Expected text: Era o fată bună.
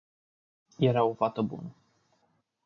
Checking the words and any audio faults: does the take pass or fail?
pass